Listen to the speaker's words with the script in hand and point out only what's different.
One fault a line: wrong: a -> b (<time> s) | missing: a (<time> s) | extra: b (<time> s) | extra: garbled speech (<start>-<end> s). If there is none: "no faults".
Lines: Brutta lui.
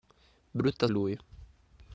no faults